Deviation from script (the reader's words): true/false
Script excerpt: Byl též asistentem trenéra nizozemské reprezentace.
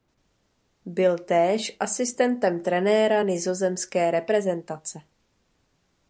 false